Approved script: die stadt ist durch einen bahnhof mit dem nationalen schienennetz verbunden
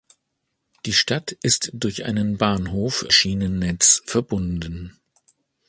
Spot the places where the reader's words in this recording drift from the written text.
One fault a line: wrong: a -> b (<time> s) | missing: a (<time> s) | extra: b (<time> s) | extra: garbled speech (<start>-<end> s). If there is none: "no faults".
missing: mit dem nationalen (3.0 s)